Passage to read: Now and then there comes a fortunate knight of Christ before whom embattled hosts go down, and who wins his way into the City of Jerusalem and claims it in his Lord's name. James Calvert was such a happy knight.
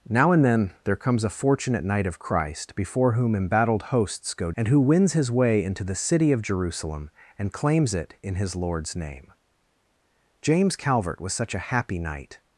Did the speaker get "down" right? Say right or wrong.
wrong